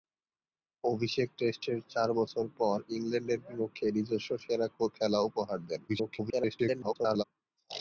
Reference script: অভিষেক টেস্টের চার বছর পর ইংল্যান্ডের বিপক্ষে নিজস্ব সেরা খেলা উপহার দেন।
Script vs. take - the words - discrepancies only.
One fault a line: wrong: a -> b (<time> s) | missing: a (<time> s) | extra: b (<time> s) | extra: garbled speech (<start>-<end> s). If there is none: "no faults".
extra: garbled speech (5.9-7.2 s)